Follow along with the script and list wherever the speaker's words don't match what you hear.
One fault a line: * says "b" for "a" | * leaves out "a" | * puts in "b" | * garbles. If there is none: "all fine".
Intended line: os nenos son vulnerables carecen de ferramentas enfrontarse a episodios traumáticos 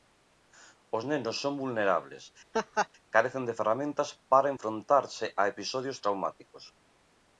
* puts in "para"